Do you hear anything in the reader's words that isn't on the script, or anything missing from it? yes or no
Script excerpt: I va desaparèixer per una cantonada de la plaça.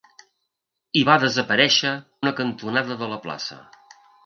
yes